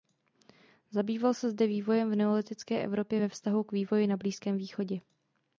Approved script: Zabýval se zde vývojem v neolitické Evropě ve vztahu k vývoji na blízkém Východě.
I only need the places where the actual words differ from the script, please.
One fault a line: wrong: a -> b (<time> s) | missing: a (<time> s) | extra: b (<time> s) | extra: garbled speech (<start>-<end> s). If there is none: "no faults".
no faults